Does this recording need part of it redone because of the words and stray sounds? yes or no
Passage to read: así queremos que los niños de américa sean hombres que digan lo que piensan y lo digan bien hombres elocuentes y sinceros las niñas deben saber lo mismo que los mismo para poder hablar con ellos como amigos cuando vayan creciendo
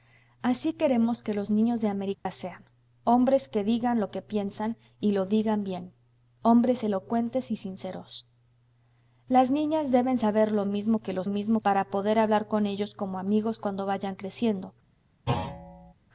yes